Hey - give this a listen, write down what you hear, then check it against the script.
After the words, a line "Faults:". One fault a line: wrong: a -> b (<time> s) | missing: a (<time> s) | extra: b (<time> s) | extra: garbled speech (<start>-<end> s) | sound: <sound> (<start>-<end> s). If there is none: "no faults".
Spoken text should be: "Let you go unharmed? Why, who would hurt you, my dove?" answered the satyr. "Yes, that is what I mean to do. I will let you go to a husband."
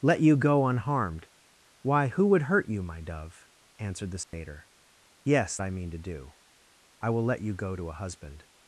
"Let you go unharmed? Why, who would hurt you, my dove?" answered the satyr. "Yes, I mean to do. I will let you go to a husband."
Faults:
sound: dropout (4.2-4.3 s)
missing: that is what (5.6 s)